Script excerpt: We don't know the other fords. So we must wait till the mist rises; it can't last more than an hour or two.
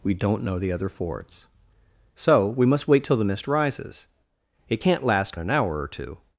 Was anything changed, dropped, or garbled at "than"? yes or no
yes